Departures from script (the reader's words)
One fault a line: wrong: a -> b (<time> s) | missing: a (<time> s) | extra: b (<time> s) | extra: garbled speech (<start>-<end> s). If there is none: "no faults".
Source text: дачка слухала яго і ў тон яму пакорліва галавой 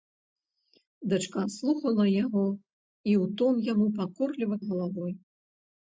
no faults